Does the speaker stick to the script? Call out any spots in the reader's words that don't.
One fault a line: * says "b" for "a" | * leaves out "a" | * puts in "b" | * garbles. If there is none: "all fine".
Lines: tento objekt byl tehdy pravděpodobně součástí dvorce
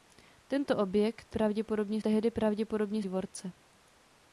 * says "pravděpodobně" for "byl"
* leaves out "součástí"